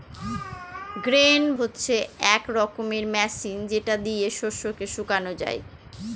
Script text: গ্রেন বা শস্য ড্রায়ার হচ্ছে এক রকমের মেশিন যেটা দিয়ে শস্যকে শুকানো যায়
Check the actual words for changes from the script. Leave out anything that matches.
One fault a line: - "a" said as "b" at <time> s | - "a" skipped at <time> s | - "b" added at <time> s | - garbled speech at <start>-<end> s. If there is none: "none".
- "বা শস্য ড্রায়ার" skipped at 1.4 s